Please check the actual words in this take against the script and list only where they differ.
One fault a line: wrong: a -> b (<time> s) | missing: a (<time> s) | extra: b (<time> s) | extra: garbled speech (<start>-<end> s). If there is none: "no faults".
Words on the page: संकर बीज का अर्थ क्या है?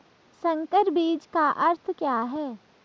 no faults